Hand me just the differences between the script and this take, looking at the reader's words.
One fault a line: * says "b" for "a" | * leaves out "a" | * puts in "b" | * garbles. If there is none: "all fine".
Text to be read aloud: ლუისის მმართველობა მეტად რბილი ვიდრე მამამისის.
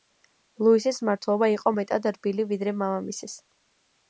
* puts in "იყო"